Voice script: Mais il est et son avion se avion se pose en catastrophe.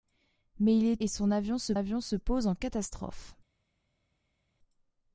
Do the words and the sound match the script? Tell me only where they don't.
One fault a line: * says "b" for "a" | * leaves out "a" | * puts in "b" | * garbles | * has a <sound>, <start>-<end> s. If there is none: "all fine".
all fine